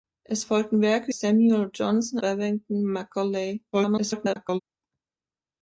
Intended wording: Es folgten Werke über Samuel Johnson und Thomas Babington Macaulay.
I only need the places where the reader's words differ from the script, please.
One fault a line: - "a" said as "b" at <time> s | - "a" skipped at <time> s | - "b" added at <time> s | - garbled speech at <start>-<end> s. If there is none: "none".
- "über" skipped at 1.1 s
- "und Thomas" skipped at 2.2 s
- garbled speech at 3.7-4.6 s